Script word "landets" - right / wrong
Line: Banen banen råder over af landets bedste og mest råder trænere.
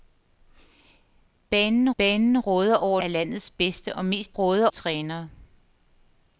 right